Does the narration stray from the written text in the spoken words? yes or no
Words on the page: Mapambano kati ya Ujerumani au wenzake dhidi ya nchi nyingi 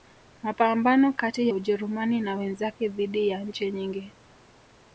yes